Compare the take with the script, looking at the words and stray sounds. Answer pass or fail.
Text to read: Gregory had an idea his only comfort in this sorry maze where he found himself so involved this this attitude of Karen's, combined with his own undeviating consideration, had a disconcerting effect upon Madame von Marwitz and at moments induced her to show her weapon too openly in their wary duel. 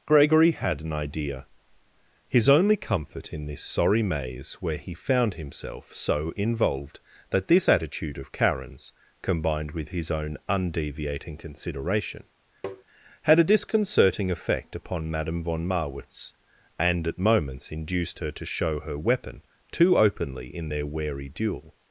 fail